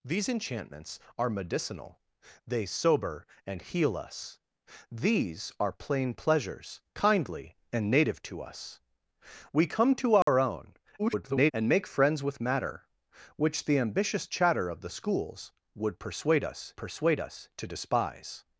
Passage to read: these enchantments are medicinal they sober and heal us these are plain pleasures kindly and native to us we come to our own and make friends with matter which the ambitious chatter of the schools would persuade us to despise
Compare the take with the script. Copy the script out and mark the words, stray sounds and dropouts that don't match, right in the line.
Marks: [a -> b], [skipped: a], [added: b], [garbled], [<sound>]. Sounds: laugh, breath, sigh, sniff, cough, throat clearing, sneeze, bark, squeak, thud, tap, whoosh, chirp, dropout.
these enchantments are medicinal they sober and heal us these are plain pleasures kindly and native to us we come to our [dropout] own [garbled] and make friends with matter which the ambitious chatter of the schools would persuade us [added: persuade us] to despise